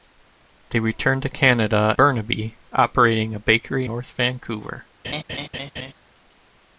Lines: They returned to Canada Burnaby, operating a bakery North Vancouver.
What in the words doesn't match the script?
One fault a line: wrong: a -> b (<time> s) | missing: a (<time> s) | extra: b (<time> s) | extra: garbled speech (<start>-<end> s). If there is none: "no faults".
no faults